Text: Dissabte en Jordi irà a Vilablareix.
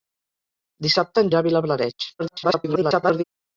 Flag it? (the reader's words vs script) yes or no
yes